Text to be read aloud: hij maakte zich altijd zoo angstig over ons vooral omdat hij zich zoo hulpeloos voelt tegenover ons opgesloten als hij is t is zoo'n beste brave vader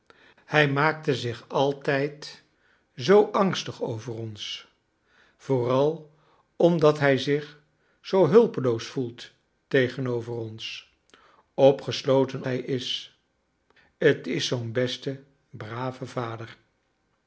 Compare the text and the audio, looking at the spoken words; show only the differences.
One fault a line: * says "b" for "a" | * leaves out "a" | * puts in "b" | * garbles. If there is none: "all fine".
* leaves out "als"